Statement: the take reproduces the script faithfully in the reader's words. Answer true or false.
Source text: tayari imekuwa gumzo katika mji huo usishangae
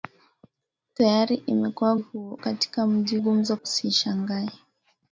false